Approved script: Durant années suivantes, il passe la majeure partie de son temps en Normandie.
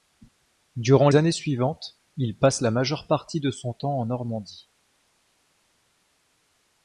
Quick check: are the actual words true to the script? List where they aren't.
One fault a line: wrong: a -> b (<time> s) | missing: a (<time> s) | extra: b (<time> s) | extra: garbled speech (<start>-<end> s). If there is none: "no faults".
no faults